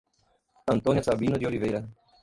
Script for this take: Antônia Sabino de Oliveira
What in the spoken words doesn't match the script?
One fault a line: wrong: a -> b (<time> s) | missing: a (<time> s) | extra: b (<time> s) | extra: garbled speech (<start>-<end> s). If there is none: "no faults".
no faults